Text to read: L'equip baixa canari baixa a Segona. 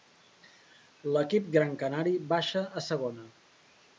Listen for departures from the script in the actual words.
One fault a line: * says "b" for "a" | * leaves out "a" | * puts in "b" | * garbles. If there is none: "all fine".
* says "gran" for "baixa"